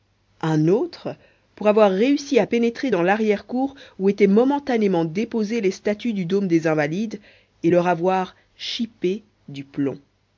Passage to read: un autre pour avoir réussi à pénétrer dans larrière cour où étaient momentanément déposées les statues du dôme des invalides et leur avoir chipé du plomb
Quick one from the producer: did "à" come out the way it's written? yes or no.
yes